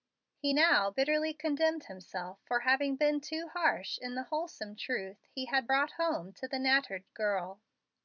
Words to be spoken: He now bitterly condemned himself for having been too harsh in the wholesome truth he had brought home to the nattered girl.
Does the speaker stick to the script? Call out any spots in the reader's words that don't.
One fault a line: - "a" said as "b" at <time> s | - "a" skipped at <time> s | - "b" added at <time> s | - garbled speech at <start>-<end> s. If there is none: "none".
none